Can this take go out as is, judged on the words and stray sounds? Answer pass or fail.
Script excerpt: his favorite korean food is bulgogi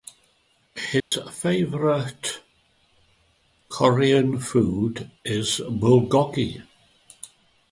fail